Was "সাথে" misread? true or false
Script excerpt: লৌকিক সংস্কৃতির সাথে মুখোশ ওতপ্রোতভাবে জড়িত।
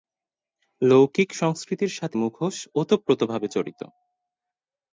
false